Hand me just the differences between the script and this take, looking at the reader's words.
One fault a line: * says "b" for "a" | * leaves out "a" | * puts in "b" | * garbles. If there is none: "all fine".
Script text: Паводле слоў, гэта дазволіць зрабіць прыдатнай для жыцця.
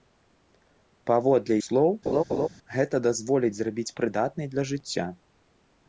all fine